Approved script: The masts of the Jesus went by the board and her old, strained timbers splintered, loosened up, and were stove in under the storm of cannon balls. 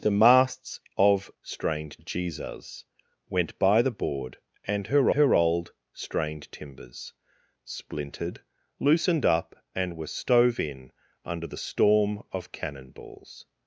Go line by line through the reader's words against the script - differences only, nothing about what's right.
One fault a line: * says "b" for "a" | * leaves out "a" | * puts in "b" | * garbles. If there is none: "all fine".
* says "strained" for "the"
* puts in "her"